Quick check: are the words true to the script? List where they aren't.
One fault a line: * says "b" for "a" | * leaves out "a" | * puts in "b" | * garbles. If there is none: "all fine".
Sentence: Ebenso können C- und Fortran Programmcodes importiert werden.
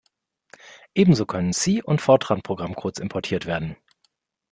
all fine